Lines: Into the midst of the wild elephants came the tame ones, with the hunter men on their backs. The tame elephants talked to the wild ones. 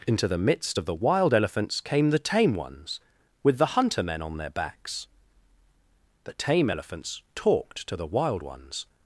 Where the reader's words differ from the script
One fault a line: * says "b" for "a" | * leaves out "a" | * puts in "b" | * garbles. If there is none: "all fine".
all fine